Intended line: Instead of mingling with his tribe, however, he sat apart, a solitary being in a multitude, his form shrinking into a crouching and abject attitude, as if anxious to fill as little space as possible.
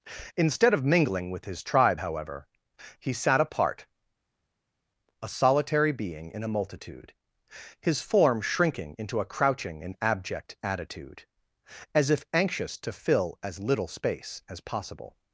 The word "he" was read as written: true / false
true